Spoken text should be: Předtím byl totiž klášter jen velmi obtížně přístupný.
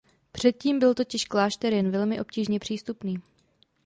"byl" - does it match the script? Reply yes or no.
yes